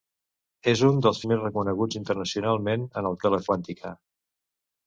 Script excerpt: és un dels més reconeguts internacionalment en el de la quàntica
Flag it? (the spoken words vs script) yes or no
no